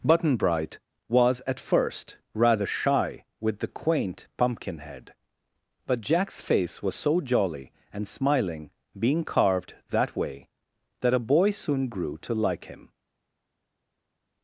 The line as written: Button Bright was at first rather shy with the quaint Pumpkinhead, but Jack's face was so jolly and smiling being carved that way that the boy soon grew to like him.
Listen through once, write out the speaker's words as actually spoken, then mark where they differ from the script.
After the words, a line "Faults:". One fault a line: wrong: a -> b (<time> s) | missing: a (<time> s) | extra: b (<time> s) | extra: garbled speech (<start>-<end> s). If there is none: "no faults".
Button Bright was at first rather shy with the quaint Pumpkinhead, but Jack's face was so jolly and smiling being carved that way that a boy soon grew to like him.
Faults:
wrong: the -> a (11.1 s)